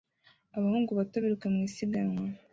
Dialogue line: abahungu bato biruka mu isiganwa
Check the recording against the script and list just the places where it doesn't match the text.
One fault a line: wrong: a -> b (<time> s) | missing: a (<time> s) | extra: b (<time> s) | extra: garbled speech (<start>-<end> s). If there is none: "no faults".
no faults